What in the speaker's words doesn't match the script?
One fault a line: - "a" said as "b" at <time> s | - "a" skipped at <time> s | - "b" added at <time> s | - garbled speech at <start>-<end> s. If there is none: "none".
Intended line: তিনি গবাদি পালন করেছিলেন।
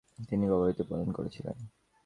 none